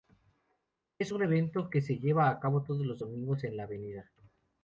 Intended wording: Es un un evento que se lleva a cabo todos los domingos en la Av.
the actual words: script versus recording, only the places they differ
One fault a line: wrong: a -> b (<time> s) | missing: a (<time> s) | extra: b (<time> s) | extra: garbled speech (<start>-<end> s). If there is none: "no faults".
missing: un (1.2 s)